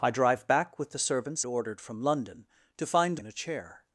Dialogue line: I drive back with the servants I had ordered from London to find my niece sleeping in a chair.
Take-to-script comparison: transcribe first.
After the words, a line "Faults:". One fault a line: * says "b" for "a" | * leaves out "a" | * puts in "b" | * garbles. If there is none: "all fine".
I drive back with the servants ordered from London to find in a chair.
Faults:
* leaves out "I had"
* leaves out "my niece sleeping"